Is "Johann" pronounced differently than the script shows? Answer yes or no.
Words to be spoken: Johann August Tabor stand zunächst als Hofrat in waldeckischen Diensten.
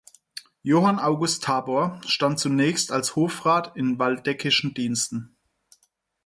no